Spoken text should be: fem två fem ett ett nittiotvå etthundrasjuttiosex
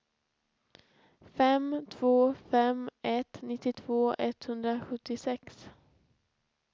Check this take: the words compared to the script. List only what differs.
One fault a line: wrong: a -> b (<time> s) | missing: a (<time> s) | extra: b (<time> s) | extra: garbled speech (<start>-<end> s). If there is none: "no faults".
missing: ett (3.4 s)